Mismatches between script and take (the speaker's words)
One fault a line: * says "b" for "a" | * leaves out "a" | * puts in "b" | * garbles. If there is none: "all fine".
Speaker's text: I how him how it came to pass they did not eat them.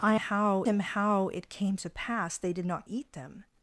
all fine